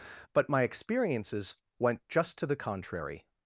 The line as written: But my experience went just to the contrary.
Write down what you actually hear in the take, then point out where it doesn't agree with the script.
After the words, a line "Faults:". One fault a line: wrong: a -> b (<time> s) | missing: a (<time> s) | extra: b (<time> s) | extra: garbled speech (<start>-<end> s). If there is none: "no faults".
But my experiences went just to the contrary.
Faults:
wrong: experience -> experiences (0.6 s)